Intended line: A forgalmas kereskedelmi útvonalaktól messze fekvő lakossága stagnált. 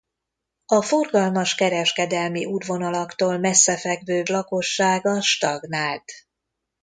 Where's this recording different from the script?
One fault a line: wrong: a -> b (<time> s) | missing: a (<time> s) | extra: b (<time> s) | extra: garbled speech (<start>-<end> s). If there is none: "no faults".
no faults